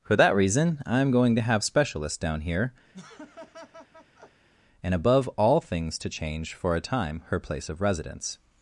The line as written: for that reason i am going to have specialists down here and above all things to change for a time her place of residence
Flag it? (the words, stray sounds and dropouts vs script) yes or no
yes